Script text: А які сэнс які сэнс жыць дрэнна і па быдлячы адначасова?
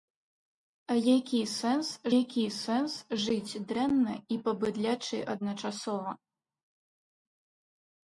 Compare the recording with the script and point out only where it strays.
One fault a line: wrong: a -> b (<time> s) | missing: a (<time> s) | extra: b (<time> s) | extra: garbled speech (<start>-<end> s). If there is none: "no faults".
no faults